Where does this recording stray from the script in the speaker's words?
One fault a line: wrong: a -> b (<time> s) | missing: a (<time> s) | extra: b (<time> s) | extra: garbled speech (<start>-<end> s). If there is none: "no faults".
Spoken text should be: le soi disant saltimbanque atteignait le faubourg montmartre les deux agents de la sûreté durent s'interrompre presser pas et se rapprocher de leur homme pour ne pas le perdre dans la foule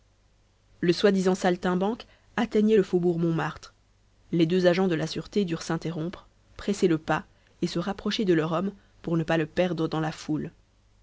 extra: le (6.9 s)